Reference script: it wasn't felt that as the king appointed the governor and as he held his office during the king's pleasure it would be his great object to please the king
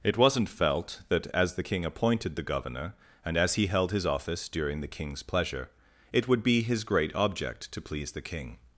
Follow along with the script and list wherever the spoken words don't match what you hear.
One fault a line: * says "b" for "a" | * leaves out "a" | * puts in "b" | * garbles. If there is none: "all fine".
all fine